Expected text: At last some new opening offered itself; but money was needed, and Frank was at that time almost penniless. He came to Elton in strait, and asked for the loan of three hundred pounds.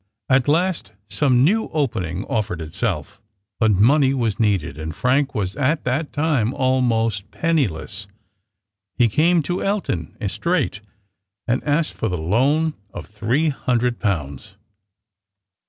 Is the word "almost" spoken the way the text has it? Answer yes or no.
yes